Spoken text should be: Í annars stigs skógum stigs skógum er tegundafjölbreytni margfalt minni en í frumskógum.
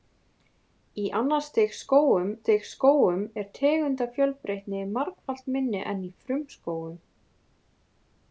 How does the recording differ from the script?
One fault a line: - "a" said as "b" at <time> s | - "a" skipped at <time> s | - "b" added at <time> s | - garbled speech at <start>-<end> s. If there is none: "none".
none